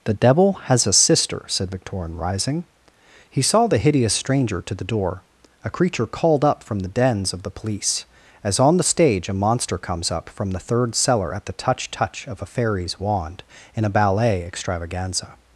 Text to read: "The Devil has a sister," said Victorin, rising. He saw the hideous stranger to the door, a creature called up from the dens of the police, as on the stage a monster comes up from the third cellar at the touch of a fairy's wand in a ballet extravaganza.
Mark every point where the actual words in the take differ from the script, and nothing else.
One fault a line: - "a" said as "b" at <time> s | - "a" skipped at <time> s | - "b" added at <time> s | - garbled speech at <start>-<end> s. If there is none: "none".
- "touch" added at 11.9 s